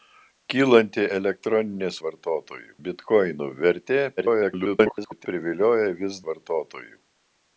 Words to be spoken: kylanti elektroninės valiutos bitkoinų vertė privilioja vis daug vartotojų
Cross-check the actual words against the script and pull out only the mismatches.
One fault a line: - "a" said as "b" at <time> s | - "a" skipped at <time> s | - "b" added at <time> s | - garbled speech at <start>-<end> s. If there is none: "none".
- "valiutos" said as "vartotojų" at 2.1 s
- garbled speech at 4.2-5.3 s
- "daug" skipped at 6.2 s